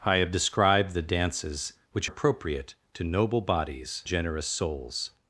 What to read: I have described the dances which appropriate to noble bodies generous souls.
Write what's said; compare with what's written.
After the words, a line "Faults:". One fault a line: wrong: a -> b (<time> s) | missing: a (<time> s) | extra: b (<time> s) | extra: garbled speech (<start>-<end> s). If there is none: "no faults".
I have described the dances which appropriate to noble bodies generous souls.
Faults:
no faults